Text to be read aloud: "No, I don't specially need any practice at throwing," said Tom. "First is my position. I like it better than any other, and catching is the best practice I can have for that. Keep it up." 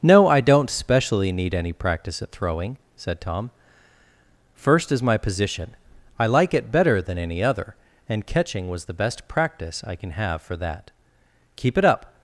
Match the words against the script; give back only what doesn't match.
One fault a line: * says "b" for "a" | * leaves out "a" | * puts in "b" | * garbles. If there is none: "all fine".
* says "was" for "is"